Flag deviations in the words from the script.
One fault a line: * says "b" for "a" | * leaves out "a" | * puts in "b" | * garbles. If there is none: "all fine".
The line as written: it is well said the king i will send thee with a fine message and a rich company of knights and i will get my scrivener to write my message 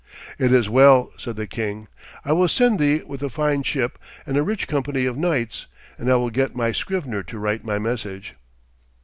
* says "ship" for "message"